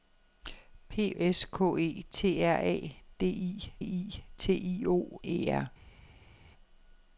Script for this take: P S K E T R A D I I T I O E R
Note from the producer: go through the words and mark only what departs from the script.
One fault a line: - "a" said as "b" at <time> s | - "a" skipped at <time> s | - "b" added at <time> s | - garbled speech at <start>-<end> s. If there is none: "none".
none